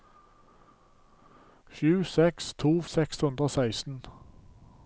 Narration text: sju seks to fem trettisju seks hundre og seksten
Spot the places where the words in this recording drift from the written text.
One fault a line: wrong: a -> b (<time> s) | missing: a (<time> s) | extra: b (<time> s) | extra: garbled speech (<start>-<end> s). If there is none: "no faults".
missing: fem trettisju (2.7 s)